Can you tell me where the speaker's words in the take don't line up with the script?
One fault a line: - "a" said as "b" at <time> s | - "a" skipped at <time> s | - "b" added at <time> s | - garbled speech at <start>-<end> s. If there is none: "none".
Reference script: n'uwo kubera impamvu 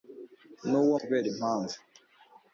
none